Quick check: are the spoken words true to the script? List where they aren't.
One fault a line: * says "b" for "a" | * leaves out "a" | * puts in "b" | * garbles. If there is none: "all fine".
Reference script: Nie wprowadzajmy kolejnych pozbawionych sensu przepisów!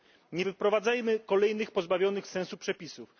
all fine